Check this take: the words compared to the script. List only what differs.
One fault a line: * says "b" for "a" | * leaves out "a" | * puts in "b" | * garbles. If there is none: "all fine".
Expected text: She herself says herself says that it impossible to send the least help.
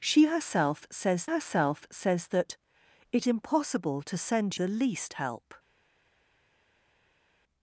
all fine